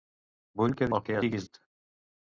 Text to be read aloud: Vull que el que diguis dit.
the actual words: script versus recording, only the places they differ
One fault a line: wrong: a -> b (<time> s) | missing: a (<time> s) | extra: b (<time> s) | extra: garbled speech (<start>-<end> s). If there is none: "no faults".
no faults